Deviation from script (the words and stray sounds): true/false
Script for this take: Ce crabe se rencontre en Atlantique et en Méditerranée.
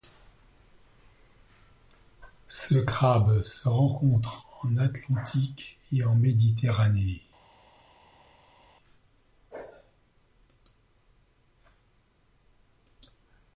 false